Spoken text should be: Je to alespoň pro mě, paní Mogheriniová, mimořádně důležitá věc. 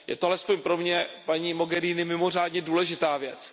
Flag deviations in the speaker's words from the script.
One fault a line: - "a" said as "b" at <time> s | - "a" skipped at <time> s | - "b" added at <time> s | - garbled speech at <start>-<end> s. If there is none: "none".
none